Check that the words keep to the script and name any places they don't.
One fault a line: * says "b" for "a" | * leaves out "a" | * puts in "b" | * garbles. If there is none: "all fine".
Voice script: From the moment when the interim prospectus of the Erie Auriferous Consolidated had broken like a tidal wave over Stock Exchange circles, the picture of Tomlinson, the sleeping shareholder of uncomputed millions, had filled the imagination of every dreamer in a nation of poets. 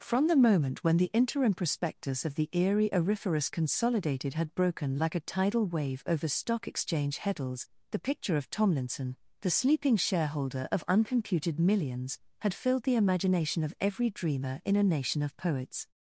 * says "heddles" for "circles"